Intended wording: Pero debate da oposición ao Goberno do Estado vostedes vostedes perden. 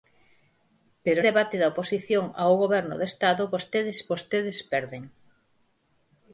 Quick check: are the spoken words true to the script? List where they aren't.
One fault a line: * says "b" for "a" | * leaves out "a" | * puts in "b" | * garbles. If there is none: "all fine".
all fine